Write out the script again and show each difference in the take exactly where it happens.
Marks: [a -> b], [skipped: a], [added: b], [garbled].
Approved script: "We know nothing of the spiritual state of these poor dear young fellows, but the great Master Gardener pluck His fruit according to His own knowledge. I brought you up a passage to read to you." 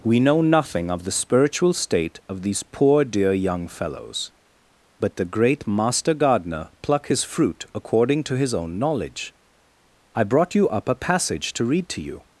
"We know nothing of the spiritual state of these poor dear young fellows, but the great Master Gardener pluck His fruit according to His own knowledge. I brought you up a passage to read to you."